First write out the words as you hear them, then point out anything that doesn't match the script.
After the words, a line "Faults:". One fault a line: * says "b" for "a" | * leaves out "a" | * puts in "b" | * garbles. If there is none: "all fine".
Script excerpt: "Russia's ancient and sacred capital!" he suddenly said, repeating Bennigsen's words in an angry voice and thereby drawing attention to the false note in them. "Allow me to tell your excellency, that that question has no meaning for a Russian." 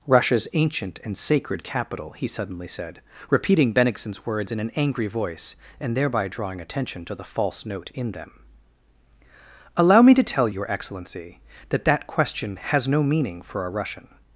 "Russia's ancient and sacred capital!" he suddenly said, repeating Bennigsen's words in an angry voice and thereby drawing attention to the false note in them. "Allow me to tell your excellency, that that question has no meaning for a Russian."
Faults:
all fine